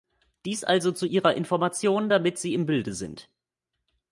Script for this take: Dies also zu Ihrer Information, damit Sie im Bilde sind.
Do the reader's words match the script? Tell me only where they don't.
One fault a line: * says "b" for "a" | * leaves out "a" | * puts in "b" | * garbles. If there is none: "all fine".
all fine